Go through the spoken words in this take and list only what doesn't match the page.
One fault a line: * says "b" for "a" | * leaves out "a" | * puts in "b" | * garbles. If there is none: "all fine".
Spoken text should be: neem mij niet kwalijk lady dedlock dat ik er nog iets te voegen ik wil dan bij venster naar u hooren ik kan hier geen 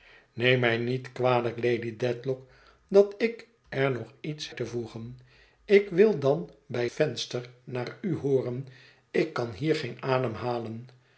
all fine